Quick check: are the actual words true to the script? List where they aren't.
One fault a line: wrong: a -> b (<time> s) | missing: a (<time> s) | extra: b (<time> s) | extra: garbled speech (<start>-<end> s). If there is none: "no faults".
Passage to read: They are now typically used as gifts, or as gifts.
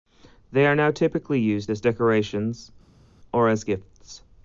wrong: gifts -> decorations (1.8 s)